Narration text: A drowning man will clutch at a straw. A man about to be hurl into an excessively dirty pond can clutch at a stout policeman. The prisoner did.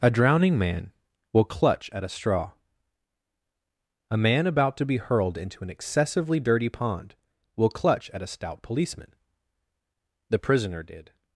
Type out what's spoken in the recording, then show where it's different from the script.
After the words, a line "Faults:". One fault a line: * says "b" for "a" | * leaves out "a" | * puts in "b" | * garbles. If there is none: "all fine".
A drowning man will clutch at a straw. A man about to be hurled into an excessively dirty pond will clutch at a stout policeman. The prisoner did.
Faults:
* says "hurled" for "hurl"
* says "will" for "can"